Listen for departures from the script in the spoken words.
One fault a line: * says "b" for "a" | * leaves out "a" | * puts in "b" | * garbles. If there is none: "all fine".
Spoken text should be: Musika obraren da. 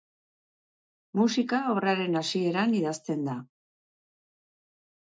* puts in "hasieran idazten"